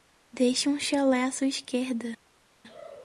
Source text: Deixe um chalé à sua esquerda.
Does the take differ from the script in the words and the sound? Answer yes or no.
no